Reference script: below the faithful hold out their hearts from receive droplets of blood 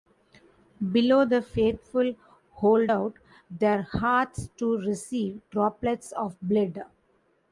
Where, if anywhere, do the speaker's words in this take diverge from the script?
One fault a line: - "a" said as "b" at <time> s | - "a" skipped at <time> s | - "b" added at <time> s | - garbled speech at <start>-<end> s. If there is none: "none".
- "from" said as "to" at 4.6 s